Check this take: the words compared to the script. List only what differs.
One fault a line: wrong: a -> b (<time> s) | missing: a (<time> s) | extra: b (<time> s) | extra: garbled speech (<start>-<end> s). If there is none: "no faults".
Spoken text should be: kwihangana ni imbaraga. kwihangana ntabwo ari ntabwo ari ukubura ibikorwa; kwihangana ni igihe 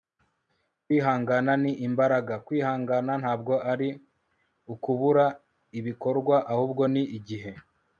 missing: ntabwo ari (3.9 s)
wrong: kwihangana -> ahubwo (6.5 s)